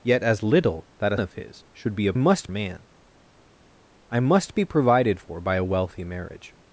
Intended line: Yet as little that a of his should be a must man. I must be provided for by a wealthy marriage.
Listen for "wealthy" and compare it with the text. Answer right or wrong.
right